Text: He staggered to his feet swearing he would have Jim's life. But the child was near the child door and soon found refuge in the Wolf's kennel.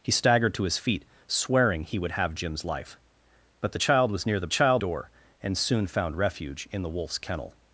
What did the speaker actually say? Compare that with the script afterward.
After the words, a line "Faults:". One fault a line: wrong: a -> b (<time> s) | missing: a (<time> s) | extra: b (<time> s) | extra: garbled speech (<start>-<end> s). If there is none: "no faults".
He staggered to his feet swearing he would have Jim's life. But the child was near the child door and soon found refuge in the Wolf's kennel.
Faults:
no faults